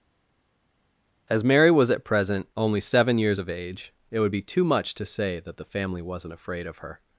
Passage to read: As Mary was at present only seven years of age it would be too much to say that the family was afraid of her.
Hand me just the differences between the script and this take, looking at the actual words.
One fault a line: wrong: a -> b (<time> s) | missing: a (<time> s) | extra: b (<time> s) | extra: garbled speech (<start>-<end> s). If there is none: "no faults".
wrong: was -> wasn't (6.0 s)